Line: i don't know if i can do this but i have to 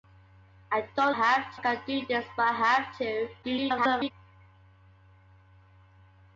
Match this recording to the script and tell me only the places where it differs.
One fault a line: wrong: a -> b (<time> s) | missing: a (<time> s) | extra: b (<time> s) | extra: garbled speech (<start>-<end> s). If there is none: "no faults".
wrong: know -> have (1.1 s)
extra: garbled speech (3.4-4.1 s)